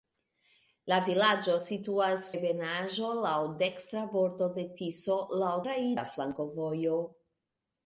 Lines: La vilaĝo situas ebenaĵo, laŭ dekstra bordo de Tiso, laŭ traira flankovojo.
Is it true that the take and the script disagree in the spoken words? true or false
false